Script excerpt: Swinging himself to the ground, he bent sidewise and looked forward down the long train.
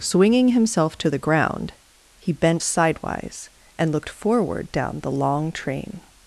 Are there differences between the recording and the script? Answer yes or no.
no